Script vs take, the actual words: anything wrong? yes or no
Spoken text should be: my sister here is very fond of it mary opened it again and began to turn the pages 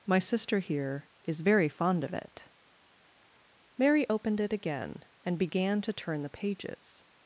no